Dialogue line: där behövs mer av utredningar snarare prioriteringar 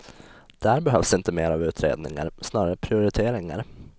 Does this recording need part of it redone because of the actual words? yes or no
yes